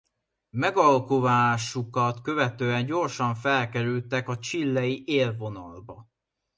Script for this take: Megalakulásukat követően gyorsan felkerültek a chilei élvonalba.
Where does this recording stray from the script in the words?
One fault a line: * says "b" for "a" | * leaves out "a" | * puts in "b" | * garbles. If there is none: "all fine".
all fine